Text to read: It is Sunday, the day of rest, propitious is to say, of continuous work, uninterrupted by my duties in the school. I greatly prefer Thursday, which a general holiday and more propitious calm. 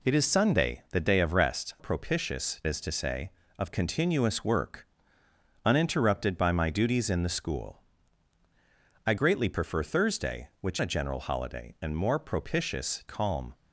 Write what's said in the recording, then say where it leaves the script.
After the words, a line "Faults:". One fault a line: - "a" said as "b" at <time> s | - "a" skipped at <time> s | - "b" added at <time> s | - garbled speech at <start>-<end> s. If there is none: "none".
It is Sunday, the day of rest, propitious is to say, of continuous work, uninterrupted by my duties in the school. I greatly prefer Thursday, which a general holiday and more propitious calm.
Faults:
none